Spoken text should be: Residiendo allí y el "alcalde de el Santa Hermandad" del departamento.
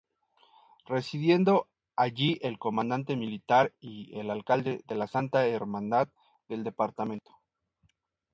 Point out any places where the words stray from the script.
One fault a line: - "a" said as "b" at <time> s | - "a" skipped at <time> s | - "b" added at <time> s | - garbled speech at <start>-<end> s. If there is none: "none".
- "el comandante militar" added at 2.4 s
- "el" said as "la" at 4.9 s